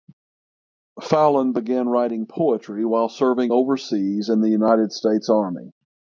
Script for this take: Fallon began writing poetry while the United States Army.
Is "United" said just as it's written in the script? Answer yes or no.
yes